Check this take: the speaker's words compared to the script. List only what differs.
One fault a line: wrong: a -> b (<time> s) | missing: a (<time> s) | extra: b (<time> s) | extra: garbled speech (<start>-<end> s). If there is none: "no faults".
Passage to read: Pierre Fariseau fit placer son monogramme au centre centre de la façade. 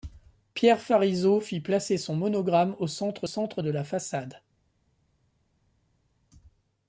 no faults